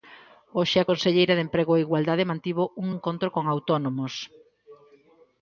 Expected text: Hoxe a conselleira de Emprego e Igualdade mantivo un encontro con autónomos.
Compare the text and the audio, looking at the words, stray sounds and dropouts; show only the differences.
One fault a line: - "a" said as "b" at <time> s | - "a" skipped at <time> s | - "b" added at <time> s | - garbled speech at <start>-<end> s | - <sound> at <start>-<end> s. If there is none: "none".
none